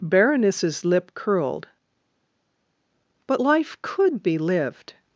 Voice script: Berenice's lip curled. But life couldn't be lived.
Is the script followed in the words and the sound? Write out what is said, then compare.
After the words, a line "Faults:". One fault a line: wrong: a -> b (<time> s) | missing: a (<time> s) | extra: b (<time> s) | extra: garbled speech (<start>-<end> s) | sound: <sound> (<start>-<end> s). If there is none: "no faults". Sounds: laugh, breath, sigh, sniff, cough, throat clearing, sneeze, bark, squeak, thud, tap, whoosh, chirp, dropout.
Berenice's lip curled. But life could be lived.
Faults:
wrong: couldn't -> could (3.8 s)